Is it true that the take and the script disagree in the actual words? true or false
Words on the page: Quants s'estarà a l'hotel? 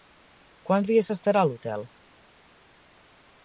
true